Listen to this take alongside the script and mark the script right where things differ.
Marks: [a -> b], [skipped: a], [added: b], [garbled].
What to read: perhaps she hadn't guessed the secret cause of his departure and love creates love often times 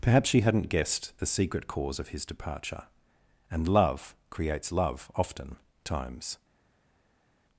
perhaps she hadn't guessed the secret cause of his departure and love creates love often times